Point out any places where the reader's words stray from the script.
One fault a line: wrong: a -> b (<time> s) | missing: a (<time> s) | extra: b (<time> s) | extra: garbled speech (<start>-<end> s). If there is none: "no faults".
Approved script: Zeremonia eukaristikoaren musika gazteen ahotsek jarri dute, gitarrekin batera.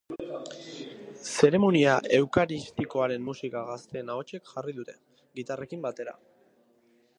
no faults